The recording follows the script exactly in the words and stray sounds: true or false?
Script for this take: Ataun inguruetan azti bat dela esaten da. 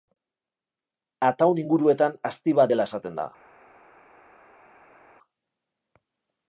true